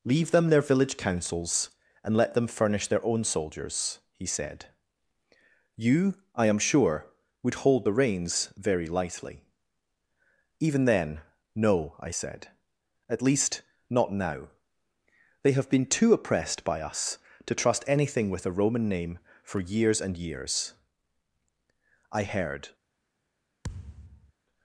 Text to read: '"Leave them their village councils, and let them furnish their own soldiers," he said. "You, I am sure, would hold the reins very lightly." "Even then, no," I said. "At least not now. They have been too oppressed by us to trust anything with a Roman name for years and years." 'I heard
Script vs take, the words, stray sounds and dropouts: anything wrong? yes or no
yes